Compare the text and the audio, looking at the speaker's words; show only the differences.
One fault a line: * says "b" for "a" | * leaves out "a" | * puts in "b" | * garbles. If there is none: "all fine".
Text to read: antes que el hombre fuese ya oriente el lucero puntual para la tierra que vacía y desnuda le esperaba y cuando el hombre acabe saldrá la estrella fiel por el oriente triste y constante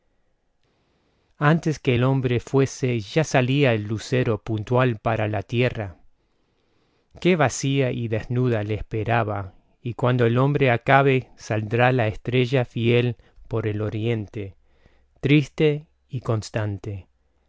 * says "salía" for "oriente"